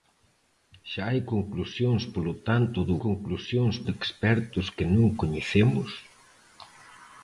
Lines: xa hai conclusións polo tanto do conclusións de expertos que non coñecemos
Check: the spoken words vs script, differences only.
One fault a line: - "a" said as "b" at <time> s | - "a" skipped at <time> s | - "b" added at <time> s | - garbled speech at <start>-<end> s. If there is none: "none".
none